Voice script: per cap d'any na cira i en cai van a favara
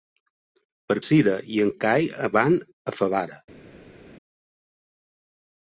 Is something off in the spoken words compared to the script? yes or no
yes